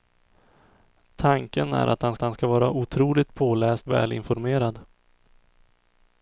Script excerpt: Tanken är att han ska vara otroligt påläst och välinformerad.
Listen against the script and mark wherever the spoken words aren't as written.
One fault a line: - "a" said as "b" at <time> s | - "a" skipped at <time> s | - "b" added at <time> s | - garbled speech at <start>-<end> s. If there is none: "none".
- "han" added at 2.2 s
- "och" skipped at 3.9 s